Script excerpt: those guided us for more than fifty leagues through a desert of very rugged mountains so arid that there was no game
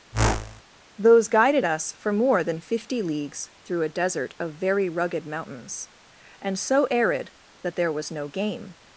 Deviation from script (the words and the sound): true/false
true